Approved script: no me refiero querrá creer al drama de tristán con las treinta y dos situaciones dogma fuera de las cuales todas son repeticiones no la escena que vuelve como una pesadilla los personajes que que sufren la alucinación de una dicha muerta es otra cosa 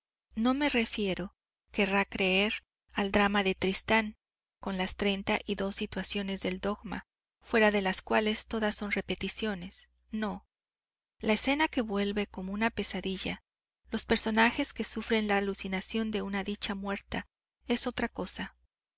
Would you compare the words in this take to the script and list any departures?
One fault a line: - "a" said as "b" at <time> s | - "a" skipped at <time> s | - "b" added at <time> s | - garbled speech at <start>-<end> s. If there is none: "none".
- "del" added at 6.4 s
- "que" skipped at 14.8 s